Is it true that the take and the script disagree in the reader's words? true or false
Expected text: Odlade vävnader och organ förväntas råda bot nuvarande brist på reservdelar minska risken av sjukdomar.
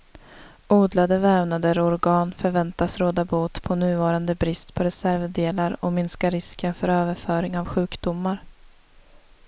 true